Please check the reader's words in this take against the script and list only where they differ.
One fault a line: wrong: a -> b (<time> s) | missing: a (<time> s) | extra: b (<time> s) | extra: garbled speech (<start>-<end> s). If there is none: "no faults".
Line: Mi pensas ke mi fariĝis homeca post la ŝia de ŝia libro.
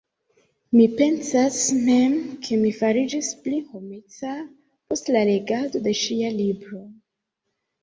extra: mem (1.9 s)
extra: pli (3.4 s)
wrong: ŝia -> legado (5.3 s)